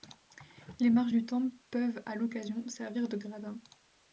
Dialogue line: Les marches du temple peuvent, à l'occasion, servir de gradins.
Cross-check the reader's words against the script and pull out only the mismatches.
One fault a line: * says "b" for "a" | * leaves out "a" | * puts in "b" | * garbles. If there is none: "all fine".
all fine